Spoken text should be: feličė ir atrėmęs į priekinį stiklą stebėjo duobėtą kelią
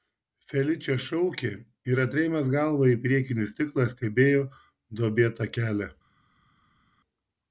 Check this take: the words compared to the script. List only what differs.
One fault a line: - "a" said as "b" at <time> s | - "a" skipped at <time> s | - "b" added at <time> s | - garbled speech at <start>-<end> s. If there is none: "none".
- "šaukė" added at 1.1 s
- "galvą" added at 2.6 s